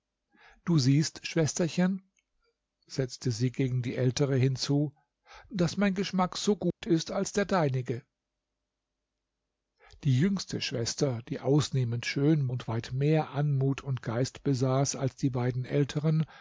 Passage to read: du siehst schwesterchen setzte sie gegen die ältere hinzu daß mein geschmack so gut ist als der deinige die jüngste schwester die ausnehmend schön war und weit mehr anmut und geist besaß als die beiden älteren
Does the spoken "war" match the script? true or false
false